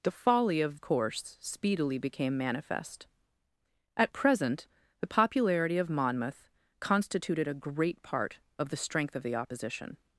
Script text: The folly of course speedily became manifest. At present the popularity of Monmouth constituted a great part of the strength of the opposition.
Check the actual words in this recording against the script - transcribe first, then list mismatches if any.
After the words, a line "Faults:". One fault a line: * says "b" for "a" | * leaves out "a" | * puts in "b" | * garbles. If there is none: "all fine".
The folly of course speedily became manifest. At present the popularity of Monmouth constituted a great part of the strength of the opposition.
Faults:
all fine